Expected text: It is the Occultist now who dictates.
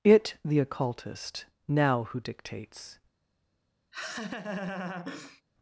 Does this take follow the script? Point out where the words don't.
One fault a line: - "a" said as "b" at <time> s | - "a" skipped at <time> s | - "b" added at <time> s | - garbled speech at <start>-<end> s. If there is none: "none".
- "is" skipped at 0.4 s